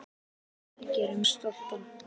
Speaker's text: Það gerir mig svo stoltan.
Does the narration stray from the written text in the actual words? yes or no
yes